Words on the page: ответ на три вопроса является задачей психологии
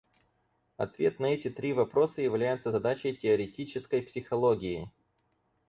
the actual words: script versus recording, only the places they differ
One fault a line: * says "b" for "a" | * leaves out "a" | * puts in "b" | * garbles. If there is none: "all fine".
* puts in "эти"
* puts in "теоретической"